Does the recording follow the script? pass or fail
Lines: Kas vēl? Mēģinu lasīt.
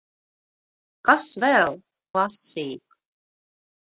fail